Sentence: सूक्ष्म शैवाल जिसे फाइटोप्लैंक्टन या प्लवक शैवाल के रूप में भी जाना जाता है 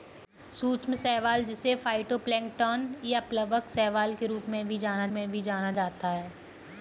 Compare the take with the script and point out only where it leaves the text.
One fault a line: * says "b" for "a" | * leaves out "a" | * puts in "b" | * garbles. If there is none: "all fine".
* puts in "में भी जाना"